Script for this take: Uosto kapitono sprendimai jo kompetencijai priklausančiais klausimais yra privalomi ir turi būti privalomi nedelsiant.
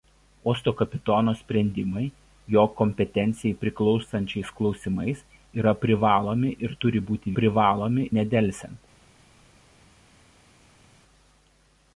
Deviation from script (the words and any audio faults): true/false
false